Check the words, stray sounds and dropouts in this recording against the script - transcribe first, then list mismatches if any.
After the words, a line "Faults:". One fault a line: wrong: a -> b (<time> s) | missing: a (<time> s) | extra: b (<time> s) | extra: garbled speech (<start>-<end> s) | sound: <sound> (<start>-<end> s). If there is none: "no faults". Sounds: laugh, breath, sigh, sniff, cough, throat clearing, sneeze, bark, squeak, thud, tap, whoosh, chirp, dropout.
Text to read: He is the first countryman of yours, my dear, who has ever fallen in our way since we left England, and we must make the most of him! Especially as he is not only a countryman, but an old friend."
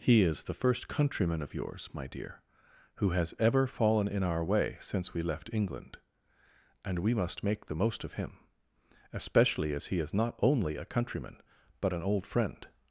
He is the first countryman of yours, my dear, who has ever fallen in our way since we left England, and we must make the most of him! Especially as he is not only a countryman, but an old friend."
Faults:
no faults